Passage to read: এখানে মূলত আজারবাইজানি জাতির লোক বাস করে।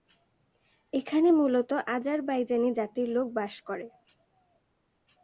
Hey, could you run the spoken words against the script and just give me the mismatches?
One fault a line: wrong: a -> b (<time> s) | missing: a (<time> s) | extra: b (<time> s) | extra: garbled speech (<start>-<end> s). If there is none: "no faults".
no faults